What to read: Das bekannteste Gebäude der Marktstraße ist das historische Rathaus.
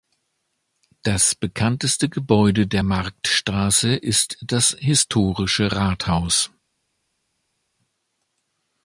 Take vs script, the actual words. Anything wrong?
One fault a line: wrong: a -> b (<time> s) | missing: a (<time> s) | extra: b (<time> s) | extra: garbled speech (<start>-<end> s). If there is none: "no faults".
no faults